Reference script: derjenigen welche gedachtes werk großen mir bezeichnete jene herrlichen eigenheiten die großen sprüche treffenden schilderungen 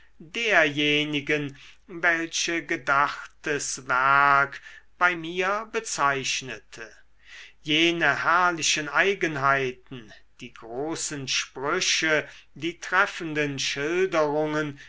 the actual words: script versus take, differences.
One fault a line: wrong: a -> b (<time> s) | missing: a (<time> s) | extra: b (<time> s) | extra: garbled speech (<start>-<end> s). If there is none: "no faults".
wrong: großen -> bei (5.0 s)
extra: die (12.6 s)